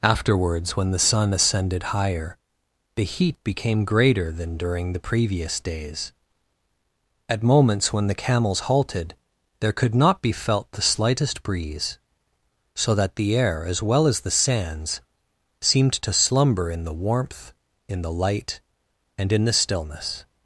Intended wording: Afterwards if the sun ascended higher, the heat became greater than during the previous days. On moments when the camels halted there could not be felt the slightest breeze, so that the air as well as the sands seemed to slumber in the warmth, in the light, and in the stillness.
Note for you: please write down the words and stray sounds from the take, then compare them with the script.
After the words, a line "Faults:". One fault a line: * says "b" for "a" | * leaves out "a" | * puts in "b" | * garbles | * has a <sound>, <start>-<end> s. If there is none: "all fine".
Afterwards when the sun ascended higher, the heat became greater than during the previous days. At moments when the camels halted there could not be felt the slightest breeze, so that the air as well as the sands seemed to slumber in the warmth, in the light, and in the stillness.
Faults:
* says "when" for "if"
* says "At" for "On"